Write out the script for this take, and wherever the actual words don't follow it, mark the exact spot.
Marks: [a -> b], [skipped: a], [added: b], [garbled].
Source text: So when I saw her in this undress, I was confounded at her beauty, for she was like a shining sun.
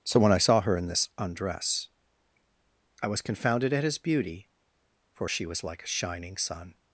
So when I saw her in this undress, I was confounded at [her -> his] beauty, for she was like a shining sun.